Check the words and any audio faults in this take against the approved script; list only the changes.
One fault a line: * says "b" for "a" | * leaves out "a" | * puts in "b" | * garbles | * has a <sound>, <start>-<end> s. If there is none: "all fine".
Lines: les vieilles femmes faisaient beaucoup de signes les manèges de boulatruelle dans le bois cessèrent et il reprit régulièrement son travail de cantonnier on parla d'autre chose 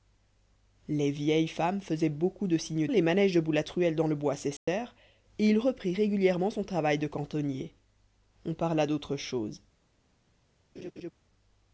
* has a dropout, 4.6-4.7 s
* has a laugh, 10.8-11.1 s